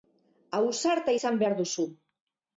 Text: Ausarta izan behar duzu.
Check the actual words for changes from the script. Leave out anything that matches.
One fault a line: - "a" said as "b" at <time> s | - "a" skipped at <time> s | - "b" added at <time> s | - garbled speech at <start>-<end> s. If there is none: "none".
none